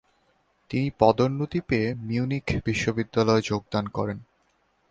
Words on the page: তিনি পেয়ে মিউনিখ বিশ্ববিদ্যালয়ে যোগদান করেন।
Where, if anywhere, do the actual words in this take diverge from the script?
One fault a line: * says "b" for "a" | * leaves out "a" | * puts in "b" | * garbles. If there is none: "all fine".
* puts in "পদোন্নতি"